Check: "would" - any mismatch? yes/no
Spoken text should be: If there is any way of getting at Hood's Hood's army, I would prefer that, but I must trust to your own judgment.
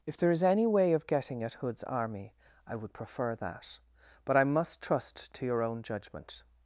no